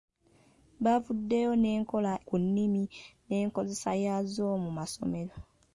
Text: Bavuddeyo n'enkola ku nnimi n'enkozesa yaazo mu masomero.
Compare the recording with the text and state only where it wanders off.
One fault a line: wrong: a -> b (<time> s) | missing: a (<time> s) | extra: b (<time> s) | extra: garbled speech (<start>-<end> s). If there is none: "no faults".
no faults